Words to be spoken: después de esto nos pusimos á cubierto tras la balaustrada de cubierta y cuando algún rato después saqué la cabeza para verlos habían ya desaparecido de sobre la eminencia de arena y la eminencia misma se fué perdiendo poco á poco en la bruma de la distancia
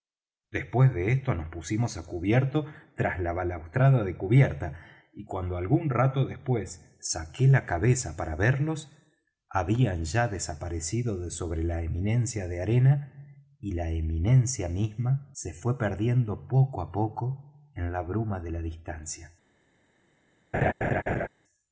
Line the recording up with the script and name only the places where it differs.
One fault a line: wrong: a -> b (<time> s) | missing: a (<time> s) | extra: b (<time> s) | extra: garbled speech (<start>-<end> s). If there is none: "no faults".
no faults